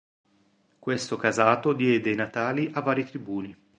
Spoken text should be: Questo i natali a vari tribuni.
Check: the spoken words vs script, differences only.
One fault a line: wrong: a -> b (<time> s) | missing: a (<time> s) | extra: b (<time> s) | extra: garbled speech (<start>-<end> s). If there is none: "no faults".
extra: casato diede (1.1 s)